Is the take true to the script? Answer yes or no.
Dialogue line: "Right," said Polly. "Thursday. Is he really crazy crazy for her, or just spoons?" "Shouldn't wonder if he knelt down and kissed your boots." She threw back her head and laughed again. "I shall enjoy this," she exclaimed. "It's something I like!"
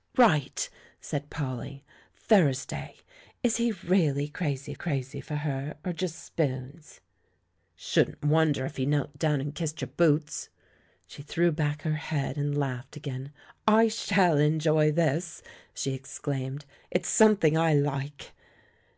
yes